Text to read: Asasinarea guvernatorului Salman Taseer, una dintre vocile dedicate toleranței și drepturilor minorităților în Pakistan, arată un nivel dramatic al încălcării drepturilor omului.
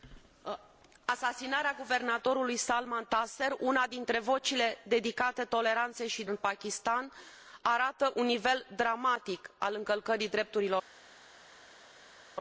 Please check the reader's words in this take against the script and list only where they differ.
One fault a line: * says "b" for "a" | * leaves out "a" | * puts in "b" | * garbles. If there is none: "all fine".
* leaves out "drepturilor minorităților"